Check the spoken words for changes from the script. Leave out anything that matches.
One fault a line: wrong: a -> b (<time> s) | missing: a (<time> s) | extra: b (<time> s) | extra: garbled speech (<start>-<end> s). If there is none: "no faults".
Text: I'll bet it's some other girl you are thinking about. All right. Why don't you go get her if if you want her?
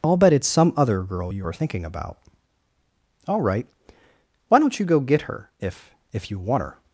no faults